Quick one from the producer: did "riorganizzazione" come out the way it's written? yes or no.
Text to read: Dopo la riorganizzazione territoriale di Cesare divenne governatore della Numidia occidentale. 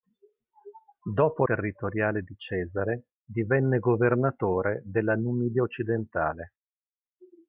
no